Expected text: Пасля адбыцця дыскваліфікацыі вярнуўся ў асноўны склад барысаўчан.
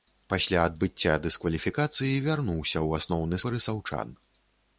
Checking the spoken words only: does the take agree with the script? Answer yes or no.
no